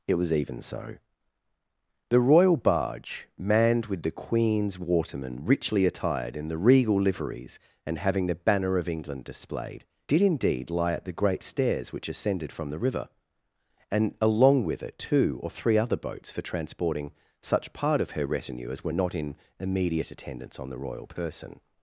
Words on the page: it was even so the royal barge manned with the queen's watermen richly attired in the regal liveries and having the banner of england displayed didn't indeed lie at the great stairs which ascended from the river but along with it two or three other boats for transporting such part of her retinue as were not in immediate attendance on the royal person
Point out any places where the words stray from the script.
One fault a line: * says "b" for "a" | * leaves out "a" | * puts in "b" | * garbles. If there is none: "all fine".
* says "did" for "didn't"
* says "and" for "but"